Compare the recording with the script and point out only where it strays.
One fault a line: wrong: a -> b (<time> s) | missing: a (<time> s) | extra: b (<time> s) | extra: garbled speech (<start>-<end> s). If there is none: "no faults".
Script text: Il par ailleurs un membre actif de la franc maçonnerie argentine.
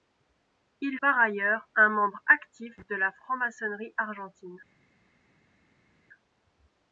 no faults